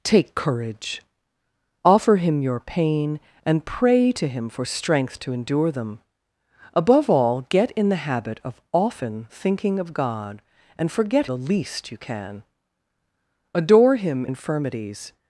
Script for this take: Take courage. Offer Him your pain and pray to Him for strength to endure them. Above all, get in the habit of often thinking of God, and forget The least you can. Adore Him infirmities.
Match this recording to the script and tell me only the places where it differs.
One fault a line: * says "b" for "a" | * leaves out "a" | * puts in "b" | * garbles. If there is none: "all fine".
all fine